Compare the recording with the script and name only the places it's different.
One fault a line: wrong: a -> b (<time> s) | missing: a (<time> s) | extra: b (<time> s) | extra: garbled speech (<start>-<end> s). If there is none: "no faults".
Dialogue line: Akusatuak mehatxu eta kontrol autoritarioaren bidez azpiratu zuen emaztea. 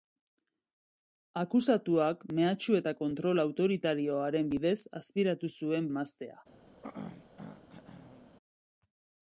no faults